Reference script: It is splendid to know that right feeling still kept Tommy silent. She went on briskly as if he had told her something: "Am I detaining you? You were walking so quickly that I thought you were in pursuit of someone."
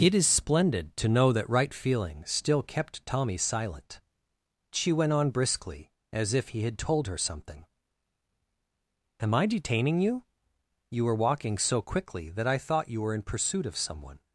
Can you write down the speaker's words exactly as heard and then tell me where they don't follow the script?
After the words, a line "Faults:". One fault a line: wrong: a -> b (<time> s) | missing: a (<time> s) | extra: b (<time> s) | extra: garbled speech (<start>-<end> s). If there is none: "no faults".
It is splendid to know that right feeling still kept Tommy silent. She went on briskly as if he had told her something: "Am I detaining you? You were walking so quickly that I thought you were in pursuit of someone."
Faults:
no faults